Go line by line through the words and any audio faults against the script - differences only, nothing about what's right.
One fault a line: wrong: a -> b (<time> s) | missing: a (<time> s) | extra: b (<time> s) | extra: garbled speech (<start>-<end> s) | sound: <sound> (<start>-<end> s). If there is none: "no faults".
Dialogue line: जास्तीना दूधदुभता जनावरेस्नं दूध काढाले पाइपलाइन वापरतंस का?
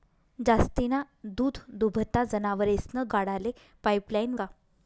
missing: दूध (3.1 s)
missing: वापरतंस (4.3 s)